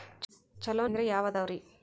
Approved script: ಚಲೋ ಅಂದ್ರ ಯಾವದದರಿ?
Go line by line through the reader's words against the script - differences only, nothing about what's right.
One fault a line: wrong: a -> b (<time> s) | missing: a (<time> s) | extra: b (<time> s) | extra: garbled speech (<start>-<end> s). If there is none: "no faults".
no faults